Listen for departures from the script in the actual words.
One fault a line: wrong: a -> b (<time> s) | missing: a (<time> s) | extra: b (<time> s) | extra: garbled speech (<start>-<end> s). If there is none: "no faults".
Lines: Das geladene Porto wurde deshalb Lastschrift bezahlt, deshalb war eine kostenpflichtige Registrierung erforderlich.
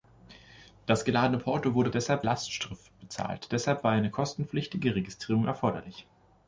no faults